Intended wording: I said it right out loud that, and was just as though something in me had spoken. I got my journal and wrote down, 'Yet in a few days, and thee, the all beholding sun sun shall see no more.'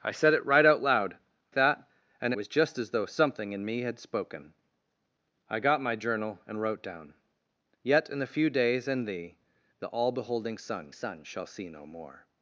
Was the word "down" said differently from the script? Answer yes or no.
no